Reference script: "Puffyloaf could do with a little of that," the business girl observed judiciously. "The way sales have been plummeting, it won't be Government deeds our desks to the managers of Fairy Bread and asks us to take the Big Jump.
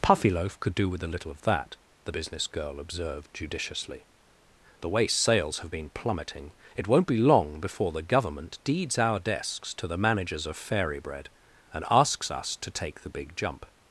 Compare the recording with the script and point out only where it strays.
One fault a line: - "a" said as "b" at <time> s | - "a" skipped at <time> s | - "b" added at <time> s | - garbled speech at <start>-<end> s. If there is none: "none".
- "long before the" added at 7.2 s